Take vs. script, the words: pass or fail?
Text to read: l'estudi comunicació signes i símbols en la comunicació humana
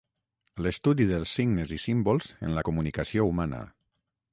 fail